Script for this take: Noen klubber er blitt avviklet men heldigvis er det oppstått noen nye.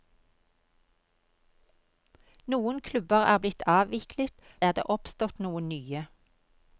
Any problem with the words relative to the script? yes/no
yes